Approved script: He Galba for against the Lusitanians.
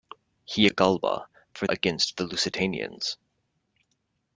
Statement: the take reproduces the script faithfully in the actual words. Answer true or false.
true